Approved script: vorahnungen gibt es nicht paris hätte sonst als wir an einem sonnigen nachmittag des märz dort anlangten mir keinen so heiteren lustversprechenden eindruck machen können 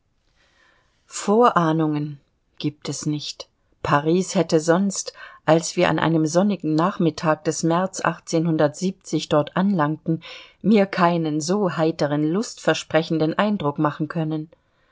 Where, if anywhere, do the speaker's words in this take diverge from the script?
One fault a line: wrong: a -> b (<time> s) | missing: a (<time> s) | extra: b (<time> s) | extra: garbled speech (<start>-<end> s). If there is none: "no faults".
no faults